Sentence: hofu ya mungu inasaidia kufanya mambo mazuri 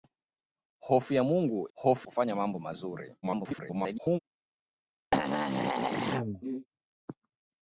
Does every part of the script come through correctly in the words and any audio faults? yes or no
no